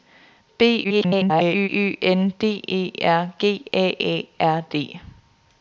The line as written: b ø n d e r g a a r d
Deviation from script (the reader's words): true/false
true